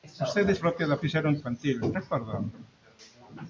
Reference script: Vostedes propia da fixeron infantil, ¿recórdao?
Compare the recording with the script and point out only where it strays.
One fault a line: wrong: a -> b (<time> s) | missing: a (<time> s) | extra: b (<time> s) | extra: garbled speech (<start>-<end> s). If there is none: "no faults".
no faults